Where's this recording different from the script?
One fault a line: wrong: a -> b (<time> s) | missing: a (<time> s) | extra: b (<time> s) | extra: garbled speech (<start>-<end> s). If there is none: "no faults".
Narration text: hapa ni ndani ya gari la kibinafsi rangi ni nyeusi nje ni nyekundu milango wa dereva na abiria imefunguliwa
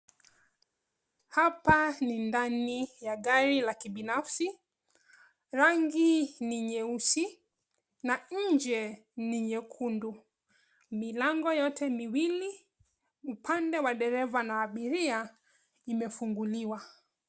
extra: na (8.0 s)
extra: yote miwili upande (11.5 s)